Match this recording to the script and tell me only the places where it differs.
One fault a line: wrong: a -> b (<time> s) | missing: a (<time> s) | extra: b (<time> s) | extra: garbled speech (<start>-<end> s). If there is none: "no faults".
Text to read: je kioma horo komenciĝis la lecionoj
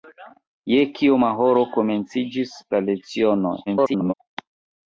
extra: garbled speech (3.7-4.1 s)